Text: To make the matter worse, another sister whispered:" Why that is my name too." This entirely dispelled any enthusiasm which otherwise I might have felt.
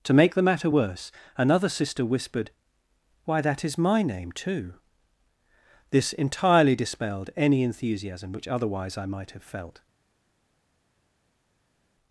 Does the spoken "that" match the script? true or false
true